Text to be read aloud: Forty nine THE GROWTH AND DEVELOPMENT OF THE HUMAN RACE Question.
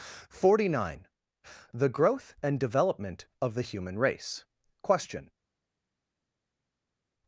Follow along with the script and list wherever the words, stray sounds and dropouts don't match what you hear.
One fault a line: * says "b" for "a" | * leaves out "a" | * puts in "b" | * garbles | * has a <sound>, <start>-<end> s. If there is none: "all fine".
all fine